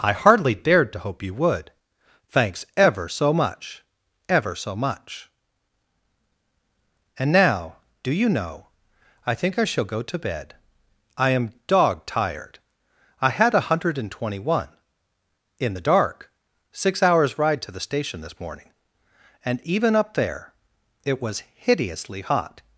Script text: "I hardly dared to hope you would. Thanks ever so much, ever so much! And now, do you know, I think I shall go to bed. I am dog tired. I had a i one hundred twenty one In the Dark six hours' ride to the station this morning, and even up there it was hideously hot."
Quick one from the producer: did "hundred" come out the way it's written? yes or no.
no